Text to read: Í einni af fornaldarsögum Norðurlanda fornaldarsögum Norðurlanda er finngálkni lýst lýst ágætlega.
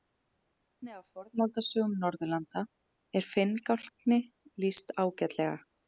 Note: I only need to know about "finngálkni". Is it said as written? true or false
true